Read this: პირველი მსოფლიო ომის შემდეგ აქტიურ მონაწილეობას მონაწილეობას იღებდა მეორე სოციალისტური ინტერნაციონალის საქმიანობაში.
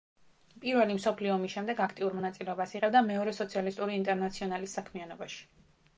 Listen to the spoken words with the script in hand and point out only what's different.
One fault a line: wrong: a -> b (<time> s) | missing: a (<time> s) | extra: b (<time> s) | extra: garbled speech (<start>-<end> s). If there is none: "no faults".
missing: მონაწილეობას (2.7 s)